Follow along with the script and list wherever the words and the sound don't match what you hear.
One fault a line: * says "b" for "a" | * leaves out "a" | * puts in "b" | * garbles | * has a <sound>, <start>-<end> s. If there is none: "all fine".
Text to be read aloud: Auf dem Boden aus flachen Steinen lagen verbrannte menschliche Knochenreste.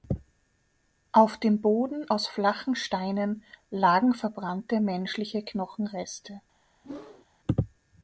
* has a whoosh, 6.8-7.3 s